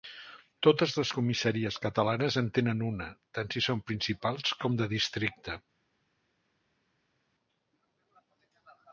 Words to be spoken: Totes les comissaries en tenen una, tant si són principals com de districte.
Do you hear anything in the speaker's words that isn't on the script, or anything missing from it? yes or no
yes